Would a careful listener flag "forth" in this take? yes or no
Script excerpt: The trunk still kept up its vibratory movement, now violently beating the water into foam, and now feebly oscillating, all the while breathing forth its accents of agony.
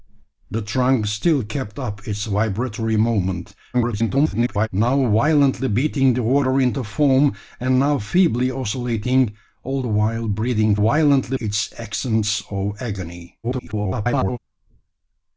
yes